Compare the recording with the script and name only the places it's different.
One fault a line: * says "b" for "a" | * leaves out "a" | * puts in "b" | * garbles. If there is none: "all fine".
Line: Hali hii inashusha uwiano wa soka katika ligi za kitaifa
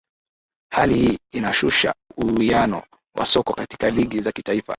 all fine